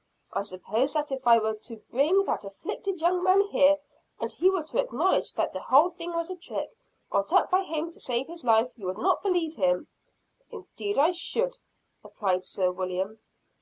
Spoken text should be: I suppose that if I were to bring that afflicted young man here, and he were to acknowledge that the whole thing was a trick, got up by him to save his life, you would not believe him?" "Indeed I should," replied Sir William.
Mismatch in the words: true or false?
false